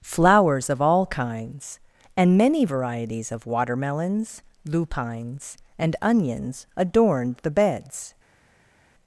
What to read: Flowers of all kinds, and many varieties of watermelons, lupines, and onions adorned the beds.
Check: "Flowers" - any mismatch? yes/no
no